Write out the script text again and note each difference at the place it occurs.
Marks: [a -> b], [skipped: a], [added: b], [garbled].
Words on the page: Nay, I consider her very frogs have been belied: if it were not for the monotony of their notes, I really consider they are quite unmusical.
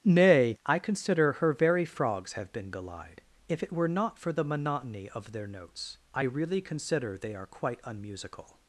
Nay, I consider her very frogs have been belied: if it were not for the monotony of their notes, I really consider they are quite unmusical.